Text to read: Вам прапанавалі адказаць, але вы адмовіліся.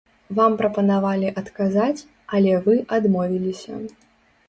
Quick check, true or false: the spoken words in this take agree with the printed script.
true